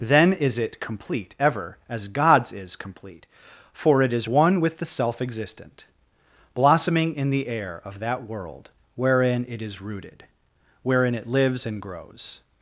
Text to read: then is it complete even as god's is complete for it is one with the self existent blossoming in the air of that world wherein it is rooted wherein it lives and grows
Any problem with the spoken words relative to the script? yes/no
yes